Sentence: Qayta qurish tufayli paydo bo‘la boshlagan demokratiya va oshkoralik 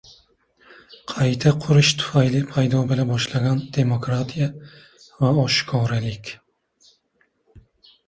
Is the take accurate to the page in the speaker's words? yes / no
yes